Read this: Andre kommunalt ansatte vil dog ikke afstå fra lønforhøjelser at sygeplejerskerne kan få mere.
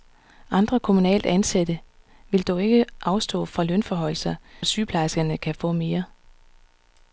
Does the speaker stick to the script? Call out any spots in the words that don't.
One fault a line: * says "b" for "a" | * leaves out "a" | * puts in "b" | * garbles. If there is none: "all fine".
all fine